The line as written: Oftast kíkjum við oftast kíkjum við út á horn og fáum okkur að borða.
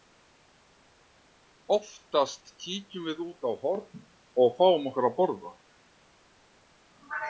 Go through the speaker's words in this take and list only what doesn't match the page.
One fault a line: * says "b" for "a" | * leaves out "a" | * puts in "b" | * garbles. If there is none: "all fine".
* leaves out "oftast kíkjum við"